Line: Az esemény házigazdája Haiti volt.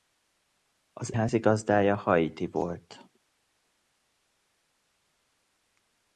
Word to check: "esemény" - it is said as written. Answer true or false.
false